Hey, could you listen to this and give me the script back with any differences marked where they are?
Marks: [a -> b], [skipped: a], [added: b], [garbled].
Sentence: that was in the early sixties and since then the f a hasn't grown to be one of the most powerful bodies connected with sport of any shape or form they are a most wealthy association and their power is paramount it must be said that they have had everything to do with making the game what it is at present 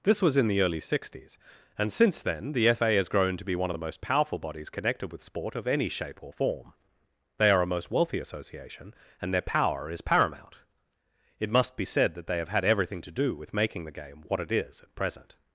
[that -> this] was in the early sixties and since then the f a [hasn't -> has] grown to be one of the most powerful bodies connected with sport of any shape or form they are a most wealthy association and their power is paramount it must be said that they have had everything to do with making the game what it is at present